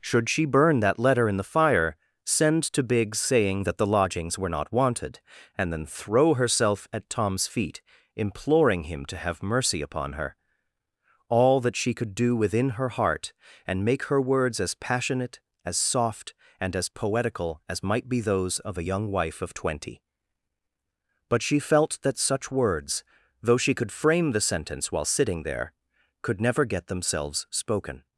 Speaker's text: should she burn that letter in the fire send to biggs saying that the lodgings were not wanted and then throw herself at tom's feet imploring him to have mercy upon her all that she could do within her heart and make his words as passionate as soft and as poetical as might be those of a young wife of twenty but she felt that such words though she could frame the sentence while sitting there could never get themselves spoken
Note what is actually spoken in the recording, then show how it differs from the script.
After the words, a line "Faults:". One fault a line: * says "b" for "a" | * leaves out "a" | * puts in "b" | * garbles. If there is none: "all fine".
should she burn that letter in the fire send to biggs saying that the lodgings were not wanted and then throw herself at tom's feet imploring him to have mercy upon her all that she could do within her heart and make her words as passionate as soft and as poetical as might be those of a young wife of twenty but she felt that such words though she could frame the sentence while sitting there could never get themselves spoken
Faults:
* says "her" for "his"